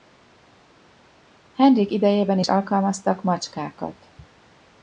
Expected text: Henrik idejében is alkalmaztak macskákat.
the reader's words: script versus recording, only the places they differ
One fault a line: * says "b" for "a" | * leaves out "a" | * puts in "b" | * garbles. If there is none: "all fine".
all fine